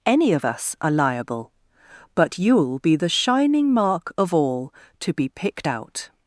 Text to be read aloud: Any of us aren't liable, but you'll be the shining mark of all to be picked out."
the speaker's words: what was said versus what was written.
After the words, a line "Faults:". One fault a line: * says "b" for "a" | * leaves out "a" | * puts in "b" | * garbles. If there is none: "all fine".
Any of us are liable, but you'll be the shining mark of all to be picked out."
Faults:
* says "are" for "aren't"